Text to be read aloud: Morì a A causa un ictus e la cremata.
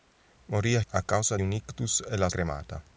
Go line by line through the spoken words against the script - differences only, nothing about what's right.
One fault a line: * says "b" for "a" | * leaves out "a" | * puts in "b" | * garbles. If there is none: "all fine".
all fine